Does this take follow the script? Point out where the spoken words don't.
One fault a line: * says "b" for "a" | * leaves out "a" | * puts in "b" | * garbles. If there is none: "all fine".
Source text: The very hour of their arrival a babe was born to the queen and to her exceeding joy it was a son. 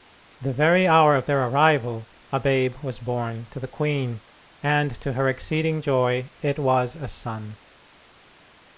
all fine